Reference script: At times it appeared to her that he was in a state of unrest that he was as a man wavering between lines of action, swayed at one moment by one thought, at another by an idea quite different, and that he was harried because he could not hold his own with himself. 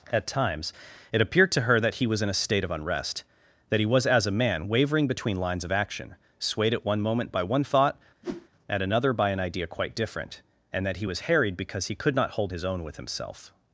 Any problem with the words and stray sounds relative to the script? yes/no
yes